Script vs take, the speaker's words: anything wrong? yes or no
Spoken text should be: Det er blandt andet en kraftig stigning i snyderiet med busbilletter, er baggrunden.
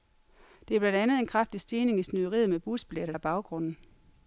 no